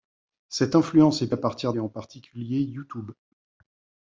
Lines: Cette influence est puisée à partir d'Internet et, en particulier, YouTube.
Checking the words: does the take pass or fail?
fail